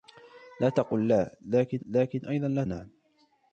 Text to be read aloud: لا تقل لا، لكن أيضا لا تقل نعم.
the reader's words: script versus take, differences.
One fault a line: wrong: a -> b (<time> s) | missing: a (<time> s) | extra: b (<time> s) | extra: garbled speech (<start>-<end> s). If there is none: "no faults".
extra: لكن (1.8 s)
missing: تقل (2.6 s)